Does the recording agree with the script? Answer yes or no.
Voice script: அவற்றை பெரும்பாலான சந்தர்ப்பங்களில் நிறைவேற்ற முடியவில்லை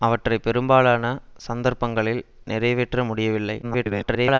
no